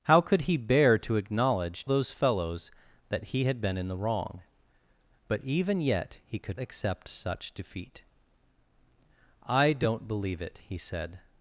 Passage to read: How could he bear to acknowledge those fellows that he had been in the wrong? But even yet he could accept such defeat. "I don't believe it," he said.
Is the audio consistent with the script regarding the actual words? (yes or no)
yes